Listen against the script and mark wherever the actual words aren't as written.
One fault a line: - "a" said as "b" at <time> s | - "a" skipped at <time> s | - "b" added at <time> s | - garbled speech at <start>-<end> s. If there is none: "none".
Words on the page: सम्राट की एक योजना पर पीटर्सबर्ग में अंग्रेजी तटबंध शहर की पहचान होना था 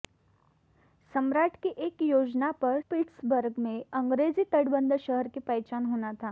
none